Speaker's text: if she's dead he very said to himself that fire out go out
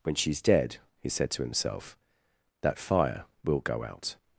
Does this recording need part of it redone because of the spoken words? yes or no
yes